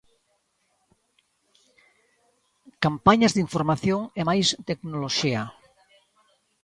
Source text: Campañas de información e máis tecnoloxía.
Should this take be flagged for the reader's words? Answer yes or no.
no